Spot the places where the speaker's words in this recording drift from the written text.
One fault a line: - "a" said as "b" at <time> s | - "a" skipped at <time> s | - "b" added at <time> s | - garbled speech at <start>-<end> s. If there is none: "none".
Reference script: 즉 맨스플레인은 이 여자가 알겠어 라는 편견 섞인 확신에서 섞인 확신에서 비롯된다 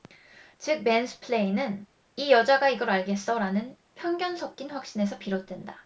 - "이걸" added at 2.7 s
- "섞인 확신에서" skipped at 5.2 s